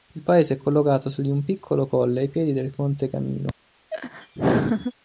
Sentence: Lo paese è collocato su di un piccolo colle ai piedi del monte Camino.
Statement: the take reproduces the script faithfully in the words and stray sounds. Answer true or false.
false